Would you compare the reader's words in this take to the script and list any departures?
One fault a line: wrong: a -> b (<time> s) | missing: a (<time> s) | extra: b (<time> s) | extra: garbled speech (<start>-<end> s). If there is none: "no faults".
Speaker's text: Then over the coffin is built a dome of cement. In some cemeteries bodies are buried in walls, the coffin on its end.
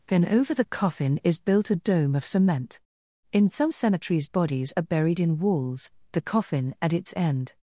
wrong: on -> at (6.8 s)